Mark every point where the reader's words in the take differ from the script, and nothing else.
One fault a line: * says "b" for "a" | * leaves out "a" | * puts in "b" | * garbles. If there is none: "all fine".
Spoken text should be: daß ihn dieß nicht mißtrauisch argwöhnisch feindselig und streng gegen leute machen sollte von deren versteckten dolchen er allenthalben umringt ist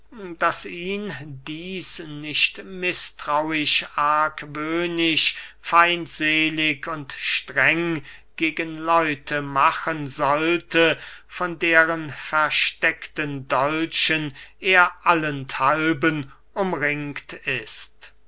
all fine